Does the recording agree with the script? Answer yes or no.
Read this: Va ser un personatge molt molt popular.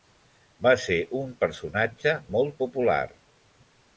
no